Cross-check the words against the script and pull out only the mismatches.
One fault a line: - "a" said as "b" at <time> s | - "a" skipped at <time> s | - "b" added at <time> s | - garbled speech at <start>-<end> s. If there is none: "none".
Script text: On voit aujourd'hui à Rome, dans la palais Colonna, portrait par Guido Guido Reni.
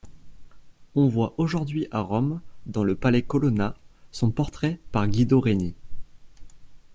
- "la" said as "le" at 2.8 s
- "son" added at 4.1 s
- "Guido" skipped at 5.4 s